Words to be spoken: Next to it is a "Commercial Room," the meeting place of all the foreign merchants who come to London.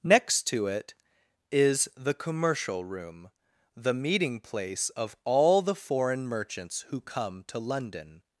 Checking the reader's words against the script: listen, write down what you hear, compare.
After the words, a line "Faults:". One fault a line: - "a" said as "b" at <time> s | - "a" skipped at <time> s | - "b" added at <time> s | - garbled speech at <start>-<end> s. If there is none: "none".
Next to it is the "Commercial Room," the meeting place of all the foreign merchants who come to London.
Faults:
- "a" said as "the" at 1.9 s